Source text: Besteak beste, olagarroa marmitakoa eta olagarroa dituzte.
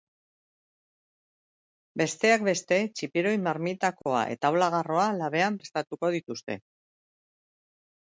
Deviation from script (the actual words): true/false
true